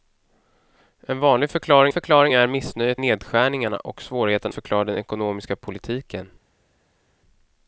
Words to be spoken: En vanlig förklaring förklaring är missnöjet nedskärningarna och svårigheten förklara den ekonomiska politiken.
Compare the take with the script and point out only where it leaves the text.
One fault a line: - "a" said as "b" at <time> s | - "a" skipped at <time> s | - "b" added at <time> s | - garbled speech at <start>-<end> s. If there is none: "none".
none